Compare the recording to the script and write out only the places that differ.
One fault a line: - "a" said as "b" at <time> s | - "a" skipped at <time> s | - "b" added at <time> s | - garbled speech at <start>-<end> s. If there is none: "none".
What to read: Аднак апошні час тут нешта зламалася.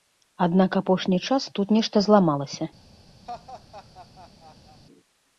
none